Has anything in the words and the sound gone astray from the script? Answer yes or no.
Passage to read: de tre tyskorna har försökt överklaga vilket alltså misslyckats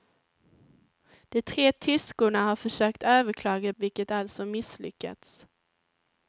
no